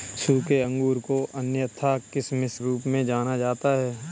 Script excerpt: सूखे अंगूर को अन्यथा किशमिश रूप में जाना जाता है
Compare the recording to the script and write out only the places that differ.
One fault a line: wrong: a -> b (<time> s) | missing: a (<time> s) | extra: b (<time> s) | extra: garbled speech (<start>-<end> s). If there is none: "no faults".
no faults